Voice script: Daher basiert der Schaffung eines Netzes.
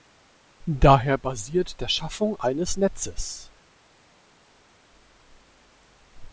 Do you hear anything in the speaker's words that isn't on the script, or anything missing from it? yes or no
no